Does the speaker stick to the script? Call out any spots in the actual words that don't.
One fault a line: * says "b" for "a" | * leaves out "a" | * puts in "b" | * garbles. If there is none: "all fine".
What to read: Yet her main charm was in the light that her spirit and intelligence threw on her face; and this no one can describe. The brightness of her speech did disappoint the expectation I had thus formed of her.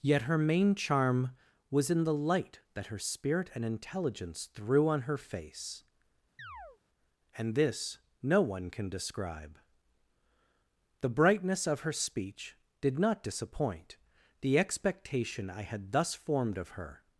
* puts in "not"